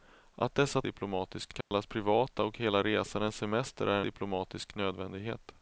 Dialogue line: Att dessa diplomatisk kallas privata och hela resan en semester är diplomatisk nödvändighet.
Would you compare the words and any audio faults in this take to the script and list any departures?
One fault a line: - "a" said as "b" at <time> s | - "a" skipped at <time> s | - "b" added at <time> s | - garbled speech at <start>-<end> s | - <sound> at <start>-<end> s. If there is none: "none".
- dropout at 1.6-1.7 s